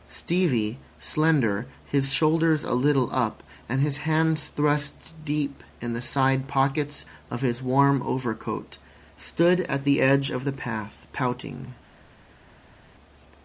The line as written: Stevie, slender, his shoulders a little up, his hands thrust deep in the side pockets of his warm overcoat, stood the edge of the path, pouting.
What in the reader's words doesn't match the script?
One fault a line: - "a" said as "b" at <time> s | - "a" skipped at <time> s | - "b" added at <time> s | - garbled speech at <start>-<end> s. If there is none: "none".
- "and" added at 3.7 s
- "at" added at 9.7 s